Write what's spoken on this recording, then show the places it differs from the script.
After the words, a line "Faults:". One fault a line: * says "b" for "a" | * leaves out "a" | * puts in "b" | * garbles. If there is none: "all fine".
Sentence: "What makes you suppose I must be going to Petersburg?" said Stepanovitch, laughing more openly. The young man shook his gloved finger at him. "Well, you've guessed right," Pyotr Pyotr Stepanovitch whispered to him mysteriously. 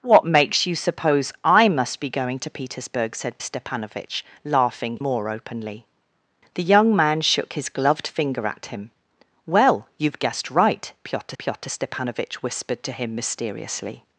"What makes you suppose I must be going to Petersburg?" said Stepanovitch, laughing more openly. The young man shook his gloved finger at him. "Well, you've guessed right," Pyotr Pyotr Stepanovitch whispered to him mysteriously.
Faults:
all fine